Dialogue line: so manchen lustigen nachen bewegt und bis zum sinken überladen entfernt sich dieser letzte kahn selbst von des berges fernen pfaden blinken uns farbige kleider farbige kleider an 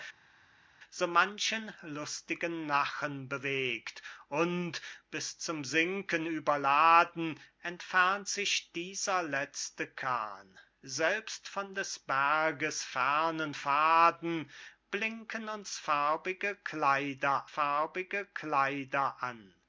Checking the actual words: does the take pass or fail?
pass